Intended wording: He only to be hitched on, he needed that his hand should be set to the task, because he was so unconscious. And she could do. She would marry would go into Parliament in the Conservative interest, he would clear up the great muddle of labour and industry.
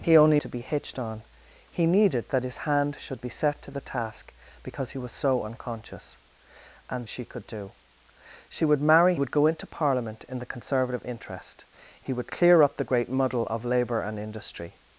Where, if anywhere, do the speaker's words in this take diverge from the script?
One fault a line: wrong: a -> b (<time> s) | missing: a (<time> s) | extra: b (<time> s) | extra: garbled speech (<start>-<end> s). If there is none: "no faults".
no faults